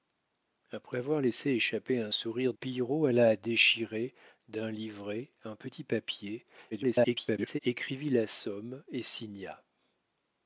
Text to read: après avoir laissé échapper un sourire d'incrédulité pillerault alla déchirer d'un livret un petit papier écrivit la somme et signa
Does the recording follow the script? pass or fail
fail